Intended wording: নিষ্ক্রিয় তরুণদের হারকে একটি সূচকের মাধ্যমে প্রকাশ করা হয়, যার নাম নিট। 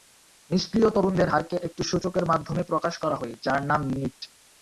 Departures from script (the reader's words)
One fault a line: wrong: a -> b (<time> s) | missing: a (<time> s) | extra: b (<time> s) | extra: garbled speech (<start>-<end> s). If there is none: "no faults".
no faults